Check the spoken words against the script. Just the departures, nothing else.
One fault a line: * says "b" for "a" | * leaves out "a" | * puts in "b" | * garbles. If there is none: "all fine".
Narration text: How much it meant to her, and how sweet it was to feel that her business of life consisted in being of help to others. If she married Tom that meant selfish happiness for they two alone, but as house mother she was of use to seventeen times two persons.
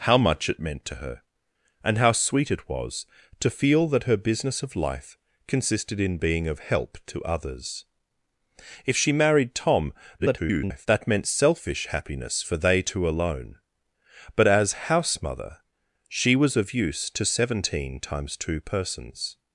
* garbles